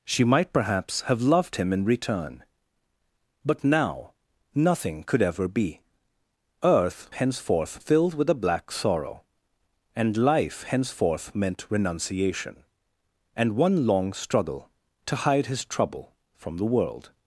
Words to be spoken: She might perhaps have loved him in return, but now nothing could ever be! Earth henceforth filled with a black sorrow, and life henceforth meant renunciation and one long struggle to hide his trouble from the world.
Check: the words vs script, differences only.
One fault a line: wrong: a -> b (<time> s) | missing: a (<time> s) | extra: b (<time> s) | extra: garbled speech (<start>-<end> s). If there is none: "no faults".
no faults